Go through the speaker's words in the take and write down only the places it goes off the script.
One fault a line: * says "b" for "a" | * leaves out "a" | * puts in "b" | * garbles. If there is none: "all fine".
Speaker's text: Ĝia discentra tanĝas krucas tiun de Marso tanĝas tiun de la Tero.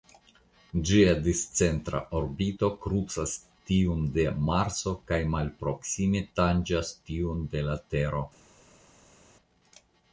* says "orbito" for "tanĝas"
* puts in "kaj malproksime"